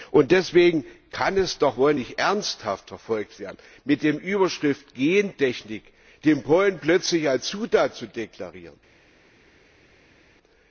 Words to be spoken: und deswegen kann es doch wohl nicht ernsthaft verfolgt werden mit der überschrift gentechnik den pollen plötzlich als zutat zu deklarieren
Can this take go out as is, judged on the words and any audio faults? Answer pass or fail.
pass